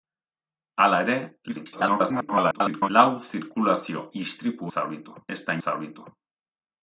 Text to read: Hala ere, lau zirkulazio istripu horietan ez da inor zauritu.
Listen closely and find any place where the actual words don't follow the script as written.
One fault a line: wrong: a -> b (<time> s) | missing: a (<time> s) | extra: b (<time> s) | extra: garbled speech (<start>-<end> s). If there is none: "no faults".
extra: garbled speech (1.5-2.9 s)
wrong: horietan -> zauritu (4.7 s)
missing: inor (5.6 s)